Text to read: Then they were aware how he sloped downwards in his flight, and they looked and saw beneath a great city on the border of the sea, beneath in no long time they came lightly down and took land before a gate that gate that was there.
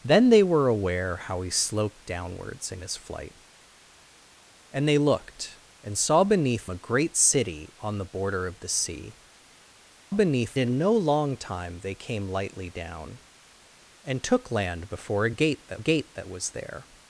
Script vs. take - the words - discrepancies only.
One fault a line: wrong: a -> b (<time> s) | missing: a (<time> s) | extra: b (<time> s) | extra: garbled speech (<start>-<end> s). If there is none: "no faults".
no faults